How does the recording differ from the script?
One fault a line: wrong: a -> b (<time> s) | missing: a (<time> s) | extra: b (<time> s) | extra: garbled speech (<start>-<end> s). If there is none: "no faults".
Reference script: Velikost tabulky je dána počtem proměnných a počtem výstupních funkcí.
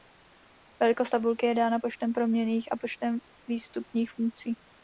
no faults